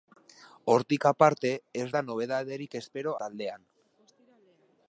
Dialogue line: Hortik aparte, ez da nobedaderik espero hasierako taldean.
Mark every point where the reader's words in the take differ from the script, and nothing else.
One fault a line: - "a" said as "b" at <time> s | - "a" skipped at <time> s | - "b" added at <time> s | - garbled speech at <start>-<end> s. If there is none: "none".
- "hasierako" skipped at 3.2 s